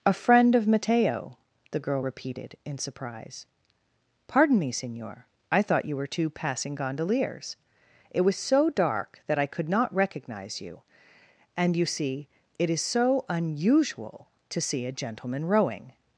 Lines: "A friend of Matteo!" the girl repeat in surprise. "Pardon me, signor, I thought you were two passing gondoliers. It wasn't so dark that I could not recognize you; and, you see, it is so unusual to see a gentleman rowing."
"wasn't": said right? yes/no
no